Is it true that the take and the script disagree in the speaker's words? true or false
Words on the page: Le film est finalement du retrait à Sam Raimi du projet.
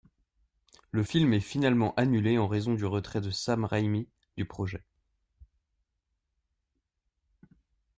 true